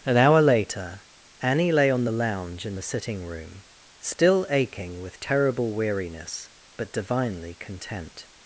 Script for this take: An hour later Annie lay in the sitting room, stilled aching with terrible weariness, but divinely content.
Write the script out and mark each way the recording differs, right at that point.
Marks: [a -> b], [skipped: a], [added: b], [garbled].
An hour later Annie lay [added: on the lounge] in the sitting room, [stilled -> still] aching with terrible weariness, but divinely content.